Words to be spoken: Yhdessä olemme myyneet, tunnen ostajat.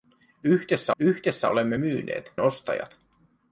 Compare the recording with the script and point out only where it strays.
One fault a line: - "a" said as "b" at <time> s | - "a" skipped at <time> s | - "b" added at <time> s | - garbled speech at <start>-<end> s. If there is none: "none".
- "yhdessä" added at 1.0 s
- "tunnen" skipped at 2.3 s